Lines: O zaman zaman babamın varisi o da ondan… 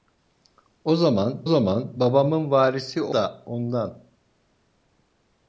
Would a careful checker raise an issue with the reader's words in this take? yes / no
no